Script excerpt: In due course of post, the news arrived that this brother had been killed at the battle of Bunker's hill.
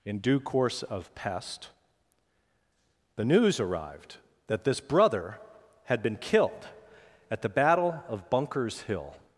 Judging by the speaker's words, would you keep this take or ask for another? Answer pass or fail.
fail